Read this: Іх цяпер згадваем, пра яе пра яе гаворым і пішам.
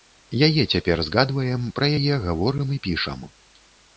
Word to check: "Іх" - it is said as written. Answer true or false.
false